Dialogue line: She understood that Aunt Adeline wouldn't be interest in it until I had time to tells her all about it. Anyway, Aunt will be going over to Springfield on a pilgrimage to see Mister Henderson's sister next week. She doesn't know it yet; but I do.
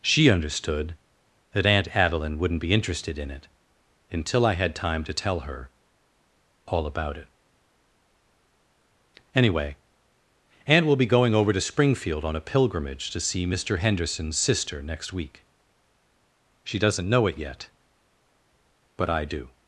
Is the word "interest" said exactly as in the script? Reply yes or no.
no